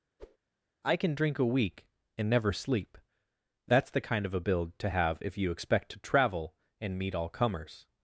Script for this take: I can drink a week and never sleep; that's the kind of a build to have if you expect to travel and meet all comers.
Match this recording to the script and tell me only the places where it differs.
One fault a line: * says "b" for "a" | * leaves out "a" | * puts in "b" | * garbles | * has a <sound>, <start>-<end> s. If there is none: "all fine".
* has a whoosh, 0.2-0.4 s